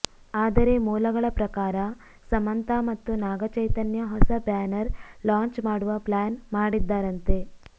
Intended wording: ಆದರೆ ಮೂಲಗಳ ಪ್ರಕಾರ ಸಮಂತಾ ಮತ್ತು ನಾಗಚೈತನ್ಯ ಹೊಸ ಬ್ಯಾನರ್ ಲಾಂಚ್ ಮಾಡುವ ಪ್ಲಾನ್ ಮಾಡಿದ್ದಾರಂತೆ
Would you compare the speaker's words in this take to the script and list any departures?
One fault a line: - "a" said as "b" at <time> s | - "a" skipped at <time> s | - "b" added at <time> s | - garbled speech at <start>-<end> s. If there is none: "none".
none